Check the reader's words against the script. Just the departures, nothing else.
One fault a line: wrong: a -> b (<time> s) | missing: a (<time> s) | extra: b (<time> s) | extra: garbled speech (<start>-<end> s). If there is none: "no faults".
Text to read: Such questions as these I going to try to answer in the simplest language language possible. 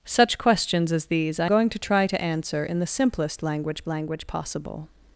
no faults